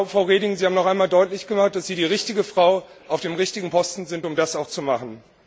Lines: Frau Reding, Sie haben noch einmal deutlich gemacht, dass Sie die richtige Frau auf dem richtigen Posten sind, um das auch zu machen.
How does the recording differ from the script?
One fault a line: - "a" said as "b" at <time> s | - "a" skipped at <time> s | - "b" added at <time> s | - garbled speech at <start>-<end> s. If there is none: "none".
none